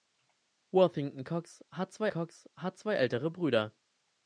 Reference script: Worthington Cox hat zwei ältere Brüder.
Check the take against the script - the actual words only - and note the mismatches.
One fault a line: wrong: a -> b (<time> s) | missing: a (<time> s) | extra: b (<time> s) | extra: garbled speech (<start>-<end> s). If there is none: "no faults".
extra: Cox hat zwei (2.1 s)